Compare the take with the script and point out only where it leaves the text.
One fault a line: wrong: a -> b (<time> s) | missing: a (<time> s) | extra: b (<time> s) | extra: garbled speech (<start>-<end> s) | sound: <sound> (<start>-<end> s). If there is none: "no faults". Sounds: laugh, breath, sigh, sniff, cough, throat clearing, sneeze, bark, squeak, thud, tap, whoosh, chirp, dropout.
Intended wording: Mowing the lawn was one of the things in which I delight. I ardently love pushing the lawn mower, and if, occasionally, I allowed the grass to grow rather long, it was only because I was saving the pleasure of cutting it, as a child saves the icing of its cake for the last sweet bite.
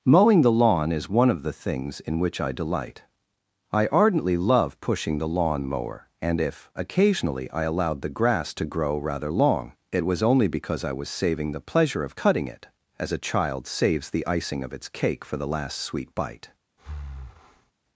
wrong: was -> is (0.9 s)
sound: breath (16.8-17.7 s)